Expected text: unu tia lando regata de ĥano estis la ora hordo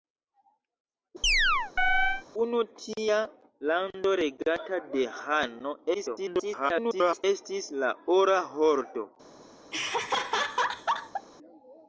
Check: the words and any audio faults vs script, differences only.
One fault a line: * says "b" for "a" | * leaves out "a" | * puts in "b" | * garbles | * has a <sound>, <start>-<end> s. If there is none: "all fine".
* has a chirp, 1.2-2.2 s
* garbles
* has a laugh, 9.7-11.3 s